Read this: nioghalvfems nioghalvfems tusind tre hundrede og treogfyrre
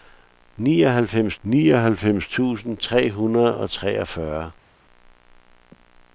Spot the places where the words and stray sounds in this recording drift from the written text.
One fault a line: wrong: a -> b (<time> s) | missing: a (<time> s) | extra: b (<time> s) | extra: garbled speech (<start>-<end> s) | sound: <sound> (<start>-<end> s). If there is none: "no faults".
no faults